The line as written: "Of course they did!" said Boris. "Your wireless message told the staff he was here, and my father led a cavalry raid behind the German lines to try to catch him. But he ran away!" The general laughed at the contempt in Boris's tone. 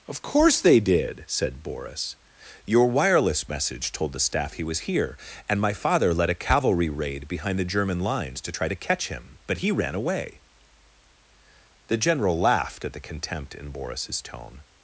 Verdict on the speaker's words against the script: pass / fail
pass